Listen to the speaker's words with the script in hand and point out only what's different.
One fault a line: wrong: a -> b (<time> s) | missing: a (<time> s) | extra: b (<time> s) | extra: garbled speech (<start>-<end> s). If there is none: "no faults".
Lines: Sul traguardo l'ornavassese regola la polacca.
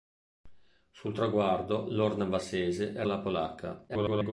missing: regola (3.0 s)
extra: garbled speech (3.9-4.3 s)